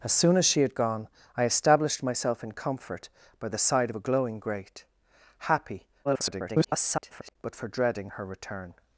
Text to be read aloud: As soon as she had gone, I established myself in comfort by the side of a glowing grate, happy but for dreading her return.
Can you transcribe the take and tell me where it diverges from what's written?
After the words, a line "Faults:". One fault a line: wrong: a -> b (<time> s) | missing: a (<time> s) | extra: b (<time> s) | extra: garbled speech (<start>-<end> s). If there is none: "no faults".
As soon as she had gone, I established myself in comfort by the side of a glowing grate, happy [garbled] but for dreading her return.
Faults:
extra: garbled speech (6.0-7.4 s)